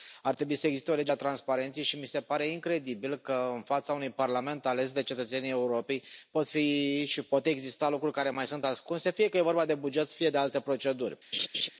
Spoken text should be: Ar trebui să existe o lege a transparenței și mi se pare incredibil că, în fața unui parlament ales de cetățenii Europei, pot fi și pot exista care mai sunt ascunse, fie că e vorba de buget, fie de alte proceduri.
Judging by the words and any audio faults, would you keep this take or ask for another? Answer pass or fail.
fail